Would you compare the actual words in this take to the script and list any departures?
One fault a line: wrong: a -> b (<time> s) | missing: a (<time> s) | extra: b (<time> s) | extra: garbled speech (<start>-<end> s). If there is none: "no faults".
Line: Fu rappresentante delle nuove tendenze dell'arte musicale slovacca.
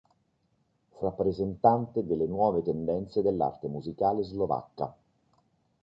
no faults